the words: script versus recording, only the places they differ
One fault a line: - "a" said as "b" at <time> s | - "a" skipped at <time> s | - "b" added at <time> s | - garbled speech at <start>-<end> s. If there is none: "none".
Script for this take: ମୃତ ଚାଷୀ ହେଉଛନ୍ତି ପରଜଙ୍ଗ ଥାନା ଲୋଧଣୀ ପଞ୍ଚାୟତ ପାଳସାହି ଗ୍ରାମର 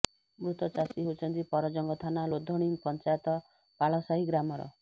none